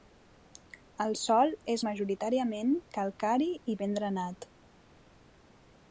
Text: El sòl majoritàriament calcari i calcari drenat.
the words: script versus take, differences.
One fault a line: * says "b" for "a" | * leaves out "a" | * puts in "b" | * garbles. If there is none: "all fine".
* puts in "és"
* says "ben" for "calcari"